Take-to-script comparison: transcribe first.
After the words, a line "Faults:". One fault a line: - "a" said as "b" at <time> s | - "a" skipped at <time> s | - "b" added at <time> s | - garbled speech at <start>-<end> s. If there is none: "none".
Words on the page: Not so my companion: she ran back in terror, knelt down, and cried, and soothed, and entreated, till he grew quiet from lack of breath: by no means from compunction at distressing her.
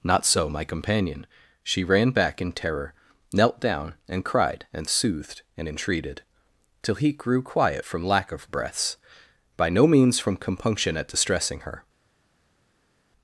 Not so my companion: she ran back in terror, knelt down, and cried, and soothed, and entreated, till he grew quiet from lack of breaths: by no means from compunction at distressing her.
Faults:
- "breath" said as "breaths" at 8.5 s